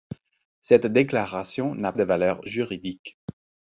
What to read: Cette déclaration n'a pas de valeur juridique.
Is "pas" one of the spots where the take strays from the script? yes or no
yes